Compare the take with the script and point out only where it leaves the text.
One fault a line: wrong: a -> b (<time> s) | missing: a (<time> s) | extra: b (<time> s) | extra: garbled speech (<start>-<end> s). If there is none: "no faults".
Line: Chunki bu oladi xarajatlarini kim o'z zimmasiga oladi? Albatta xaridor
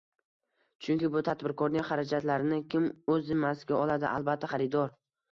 wrong: oladi -> tadbirkorning (1.2 s)